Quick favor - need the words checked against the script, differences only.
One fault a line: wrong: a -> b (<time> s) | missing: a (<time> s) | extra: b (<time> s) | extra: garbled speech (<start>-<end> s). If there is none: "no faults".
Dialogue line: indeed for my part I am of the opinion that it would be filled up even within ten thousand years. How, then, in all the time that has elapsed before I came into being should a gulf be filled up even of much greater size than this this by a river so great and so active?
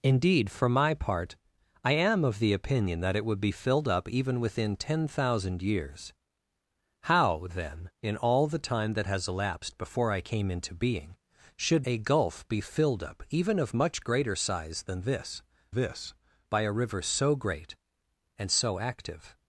no faults